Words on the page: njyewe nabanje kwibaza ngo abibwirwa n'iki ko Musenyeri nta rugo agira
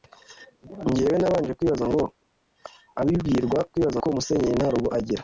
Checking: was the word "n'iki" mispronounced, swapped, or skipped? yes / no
yes